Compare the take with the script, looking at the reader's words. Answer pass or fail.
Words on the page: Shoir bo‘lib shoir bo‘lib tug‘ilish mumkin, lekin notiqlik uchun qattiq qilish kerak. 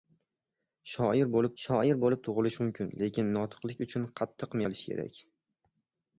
pass